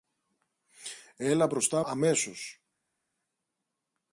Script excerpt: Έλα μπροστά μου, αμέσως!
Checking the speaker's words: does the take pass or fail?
fail